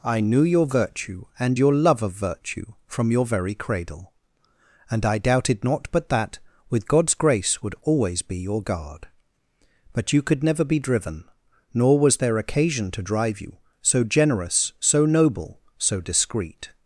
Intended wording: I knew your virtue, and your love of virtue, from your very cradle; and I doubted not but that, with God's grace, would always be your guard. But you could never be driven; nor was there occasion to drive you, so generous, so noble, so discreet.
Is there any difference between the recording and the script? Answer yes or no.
no